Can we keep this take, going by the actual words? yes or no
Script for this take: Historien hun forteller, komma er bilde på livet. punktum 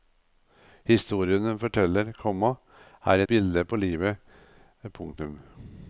yes